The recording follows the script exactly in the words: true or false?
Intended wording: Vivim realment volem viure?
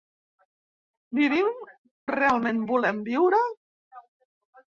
true